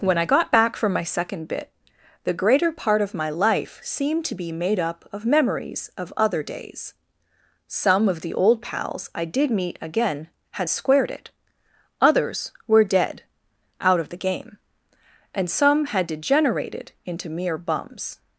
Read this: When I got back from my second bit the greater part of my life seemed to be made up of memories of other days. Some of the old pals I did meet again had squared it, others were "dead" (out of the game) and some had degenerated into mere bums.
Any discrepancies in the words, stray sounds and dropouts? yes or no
no